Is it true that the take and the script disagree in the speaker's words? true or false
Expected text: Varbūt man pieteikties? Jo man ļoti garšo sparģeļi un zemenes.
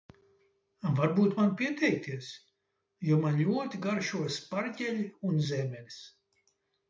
false